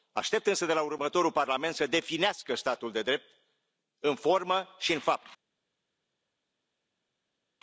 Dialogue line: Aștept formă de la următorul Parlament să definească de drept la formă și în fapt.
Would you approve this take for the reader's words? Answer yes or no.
no